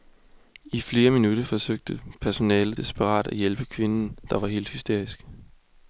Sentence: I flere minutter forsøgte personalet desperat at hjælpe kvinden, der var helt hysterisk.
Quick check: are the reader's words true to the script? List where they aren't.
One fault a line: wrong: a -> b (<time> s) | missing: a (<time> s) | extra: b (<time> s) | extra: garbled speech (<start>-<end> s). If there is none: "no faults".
no faults